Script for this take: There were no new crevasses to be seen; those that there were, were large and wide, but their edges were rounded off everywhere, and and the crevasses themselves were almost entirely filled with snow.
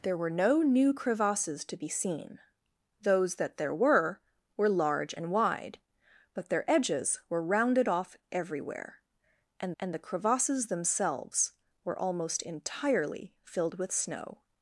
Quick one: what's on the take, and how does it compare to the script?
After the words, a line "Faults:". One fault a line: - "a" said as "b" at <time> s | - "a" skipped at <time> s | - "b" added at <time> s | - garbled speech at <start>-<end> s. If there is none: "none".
There were no new crevasses to be seen; those that there were, were large and wide, but their edges were rounded off everywhere, and and the crevasses themselves were almost entirely filled with snow.
Faults:
none